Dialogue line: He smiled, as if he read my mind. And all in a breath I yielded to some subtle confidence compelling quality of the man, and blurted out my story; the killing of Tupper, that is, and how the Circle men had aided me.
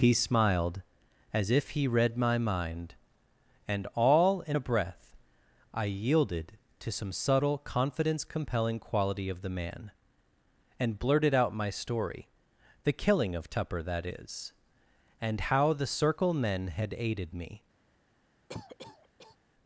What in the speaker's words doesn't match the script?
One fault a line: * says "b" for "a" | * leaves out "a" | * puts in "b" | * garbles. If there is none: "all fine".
all fine